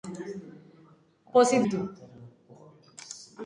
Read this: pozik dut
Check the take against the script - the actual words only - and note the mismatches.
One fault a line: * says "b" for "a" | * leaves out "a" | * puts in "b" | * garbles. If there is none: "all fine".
all fine